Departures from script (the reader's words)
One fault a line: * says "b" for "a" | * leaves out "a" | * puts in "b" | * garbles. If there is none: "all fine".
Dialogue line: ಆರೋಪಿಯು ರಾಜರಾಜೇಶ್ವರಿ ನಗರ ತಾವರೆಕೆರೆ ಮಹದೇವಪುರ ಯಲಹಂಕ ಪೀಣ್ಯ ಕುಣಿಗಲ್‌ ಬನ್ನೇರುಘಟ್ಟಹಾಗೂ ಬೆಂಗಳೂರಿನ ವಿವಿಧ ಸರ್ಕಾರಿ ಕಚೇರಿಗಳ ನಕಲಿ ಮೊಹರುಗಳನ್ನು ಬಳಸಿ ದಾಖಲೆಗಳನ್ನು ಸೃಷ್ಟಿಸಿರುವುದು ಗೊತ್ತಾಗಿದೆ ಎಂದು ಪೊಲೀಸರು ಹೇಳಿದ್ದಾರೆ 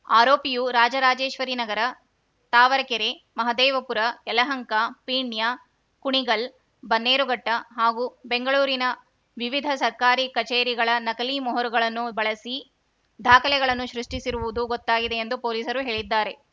all fine